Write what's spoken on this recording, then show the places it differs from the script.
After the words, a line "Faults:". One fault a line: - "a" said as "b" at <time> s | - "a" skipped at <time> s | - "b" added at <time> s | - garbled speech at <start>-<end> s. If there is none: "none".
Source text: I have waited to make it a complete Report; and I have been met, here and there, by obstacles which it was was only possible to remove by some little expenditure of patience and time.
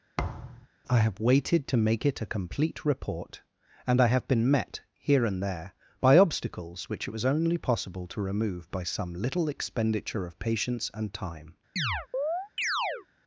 I have waited to make it a complete Report; and I have been met, here and there, by obstacles which it was only possible to remove by some little expenditure of patience and time.
Faults:
- "was" skipped at 7.2 s